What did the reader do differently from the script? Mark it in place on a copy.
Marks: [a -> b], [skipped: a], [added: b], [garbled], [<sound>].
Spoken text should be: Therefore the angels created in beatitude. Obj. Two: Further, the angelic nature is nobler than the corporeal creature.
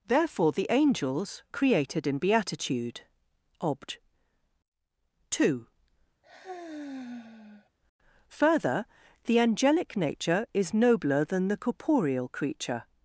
Therefore the angels created in beatitude. Obj. Two: [sigh] Further, the angelic nature is nobler than the corporeal creature.